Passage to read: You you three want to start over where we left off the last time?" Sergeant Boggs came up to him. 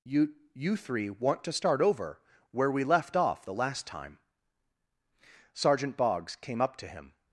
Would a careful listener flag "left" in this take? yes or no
no